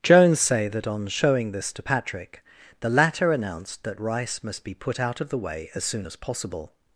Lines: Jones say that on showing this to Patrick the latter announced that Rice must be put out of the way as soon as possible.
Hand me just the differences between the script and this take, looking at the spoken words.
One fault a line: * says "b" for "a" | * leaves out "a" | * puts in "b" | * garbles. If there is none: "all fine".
all fine